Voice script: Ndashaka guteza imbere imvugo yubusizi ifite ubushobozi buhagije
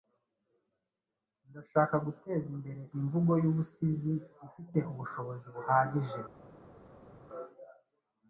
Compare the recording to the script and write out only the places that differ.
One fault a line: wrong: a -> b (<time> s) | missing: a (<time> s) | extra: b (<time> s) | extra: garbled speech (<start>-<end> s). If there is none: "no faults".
no faults